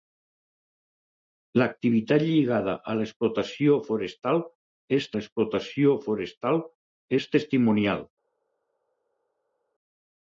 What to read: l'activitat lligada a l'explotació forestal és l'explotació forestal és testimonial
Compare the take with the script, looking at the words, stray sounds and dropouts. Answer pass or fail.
pass